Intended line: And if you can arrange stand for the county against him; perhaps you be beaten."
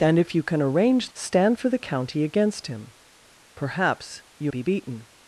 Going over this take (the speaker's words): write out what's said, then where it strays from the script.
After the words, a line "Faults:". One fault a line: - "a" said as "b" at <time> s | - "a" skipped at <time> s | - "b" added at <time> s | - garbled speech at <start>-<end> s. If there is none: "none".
And if you can arrange stand for the county against him; perhaps you be beaten."
Faults:
none